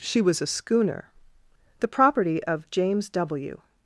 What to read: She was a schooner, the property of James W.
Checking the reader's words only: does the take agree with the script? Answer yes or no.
yes